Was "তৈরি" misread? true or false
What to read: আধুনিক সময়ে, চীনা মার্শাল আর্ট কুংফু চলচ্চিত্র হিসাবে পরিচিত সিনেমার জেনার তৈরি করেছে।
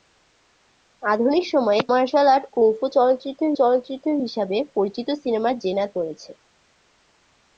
true